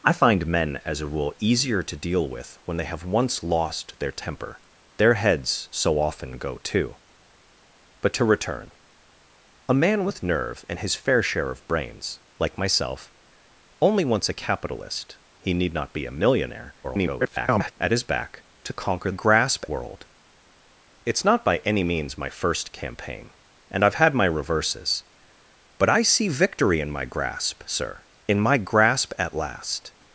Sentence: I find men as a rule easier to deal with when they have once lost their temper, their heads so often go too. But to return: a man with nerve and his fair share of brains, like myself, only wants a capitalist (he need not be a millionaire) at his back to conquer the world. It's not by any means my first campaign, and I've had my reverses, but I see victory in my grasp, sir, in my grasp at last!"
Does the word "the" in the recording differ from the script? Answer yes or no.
yes